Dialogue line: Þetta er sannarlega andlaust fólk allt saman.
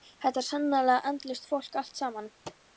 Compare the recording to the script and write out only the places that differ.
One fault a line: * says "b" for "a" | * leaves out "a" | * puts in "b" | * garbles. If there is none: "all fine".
all fine